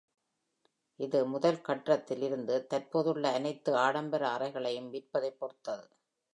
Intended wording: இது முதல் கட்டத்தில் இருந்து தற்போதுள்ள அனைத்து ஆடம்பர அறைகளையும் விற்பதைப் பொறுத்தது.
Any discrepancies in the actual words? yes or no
no